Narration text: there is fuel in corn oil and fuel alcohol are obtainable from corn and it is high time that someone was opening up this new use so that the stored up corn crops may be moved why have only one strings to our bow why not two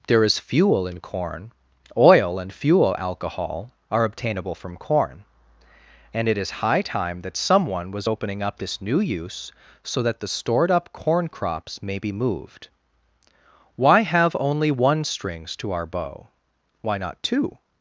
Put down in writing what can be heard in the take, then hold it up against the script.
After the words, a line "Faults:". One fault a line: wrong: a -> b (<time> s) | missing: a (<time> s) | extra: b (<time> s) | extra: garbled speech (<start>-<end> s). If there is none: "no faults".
there is fuel in corn oil and fuel alcohol are obtainable from corn and it is high time that someone was opening up this new use so that the stored up corn crops may be moved why have only one strings to our bow why not two
Faults:
no faults